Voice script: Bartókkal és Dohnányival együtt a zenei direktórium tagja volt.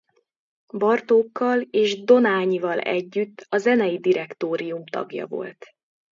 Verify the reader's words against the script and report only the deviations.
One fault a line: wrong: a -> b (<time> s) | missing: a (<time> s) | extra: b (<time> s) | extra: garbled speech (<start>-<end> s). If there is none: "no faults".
no faults